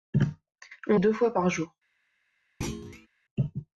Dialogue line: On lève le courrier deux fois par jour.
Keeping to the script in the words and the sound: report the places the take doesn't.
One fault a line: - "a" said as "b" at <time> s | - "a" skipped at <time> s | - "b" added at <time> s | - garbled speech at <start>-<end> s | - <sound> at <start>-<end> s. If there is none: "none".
- "lève le courrier" skipped at 1.0 s
- thud at 2.6-3.1 s